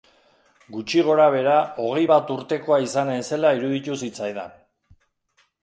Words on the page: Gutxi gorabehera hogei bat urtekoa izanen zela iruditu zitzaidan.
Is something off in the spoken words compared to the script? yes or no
no